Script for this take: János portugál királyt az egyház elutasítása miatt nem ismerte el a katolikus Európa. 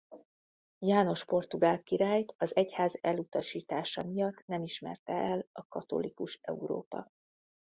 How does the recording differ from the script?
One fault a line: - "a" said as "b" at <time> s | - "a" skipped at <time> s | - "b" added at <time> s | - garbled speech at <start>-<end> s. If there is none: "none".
none